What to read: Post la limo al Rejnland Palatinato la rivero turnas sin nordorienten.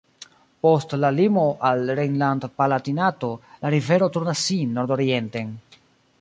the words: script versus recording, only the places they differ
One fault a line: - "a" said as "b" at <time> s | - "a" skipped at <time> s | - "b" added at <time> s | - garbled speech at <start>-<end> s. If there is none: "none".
none